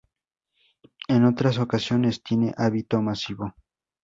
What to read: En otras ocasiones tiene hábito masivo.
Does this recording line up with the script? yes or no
yes